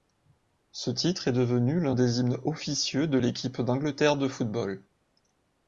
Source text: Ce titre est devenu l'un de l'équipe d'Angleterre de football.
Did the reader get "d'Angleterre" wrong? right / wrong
right